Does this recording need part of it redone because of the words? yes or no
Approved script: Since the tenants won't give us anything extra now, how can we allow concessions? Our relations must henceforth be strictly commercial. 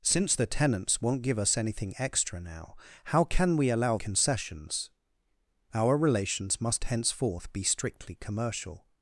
no